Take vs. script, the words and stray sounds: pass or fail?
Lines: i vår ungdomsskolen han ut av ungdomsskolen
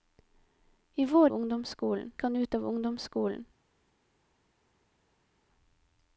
pass